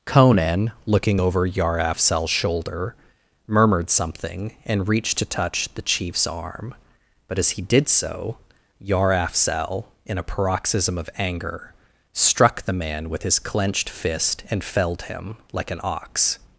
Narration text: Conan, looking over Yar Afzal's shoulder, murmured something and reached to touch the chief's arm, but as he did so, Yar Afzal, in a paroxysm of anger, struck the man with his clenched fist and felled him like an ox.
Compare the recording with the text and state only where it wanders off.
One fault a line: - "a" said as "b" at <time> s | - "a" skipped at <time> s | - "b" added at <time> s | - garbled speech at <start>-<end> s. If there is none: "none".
none